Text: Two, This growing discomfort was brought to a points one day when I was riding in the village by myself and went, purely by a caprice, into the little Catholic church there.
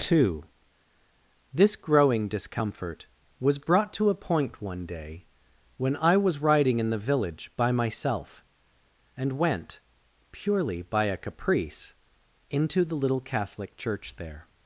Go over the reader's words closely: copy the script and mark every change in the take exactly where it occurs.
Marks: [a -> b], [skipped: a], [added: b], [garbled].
Two, This growing discomfort was brought to a [points -> point] one day when I was riding in the village by myself and went, purely by a caprice, into the little Catholic church there.